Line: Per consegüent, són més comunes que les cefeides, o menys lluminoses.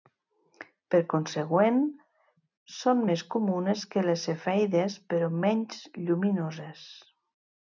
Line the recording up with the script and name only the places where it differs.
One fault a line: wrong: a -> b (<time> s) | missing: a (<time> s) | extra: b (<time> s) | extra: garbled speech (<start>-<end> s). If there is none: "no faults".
wrong: o -> però (5.1 s)